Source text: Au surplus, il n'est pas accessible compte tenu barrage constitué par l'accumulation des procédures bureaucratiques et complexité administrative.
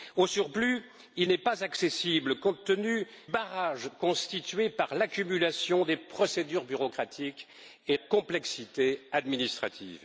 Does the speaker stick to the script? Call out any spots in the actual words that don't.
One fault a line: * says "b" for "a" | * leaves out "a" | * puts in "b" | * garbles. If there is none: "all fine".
all fine